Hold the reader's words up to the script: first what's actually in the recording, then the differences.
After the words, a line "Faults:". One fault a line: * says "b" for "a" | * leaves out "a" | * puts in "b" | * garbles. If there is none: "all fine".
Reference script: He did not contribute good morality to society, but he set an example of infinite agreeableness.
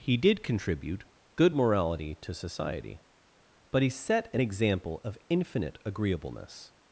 He did contribute good morality to society, but he set an example of infinite agreeableness.
Faults:
* leaves out "not"